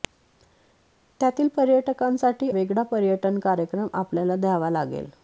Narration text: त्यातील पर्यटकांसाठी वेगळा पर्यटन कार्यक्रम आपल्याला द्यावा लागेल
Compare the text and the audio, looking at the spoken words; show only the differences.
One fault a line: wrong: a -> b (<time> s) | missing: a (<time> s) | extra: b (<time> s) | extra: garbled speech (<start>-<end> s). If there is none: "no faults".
no faults